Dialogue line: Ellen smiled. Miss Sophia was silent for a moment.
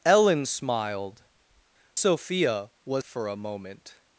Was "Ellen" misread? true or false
false